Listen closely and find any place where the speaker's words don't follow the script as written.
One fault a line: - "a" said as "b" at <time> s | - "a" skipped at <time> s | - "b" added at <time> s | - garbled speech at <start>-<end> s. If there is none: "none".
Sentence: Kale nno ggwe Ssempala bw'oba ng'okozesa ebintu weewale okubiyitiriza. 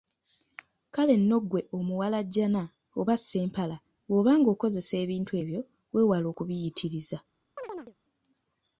- "omuwalajjana oba" added at 1.8 s
- "ebyo" added at 5.4 s